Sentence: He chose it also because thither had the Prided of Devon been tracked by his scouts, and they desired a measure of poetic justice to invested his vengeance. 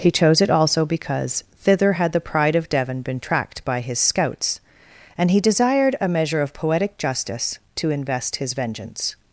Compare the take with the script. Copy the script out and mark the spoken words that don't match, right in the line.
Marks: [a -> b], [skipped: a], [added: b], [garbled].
He chose it also because thither had the [Prided -> Pride] of Devon been tracked by his scouts, and [they -> he] desired a measure of poetic justice to [invested -> invest] his vengeance.